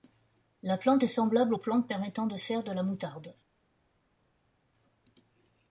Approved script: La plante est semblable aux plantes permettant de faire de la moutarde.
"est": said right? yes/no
yes